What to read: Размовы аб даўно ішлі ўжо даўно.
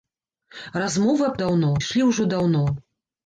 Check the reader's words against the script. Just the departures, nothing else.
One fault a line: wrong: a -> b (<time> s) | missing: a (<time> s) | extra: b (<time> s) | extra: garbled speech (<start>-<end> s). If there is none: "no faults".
no faults